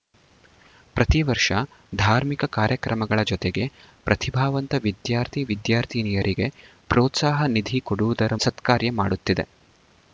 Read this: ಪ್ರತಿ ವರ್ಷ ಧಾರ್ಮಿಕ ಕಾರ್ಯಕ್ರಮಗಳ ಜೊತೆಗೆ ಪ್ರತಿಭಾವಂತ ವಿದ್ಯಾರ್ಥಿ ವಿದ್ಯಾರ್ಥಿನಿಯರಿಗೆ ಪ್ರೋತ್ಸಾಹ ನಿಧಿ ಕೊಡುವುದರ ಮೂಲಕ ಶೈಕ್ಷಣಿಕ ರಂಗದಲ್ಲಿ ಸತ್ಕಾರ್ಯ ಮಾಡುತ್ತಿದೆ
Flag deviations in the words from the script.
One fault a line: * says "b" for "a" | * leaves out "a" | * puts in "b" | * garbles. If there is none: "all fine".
* leaves out "ಮೂಲಕ ಶೈಕ್ಷಣಿಕ ರಂಗದಲ್ಲಿ"